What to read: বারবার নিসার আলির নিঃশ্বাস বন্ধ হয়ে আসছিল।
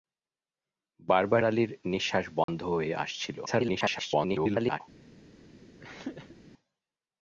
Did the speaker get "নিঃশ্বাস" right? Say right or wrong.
right